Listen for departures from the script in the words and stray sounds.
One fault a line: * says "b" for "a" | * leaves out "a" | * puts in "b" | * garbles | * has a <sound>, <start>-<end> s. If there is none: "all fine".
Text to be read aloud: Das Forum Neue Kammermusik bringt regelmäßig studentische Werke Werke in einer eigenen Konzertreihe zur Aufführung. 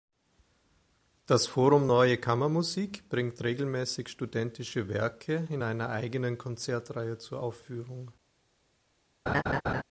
* leaves out "Werke"
* has a laugh, 9.3-9.8 s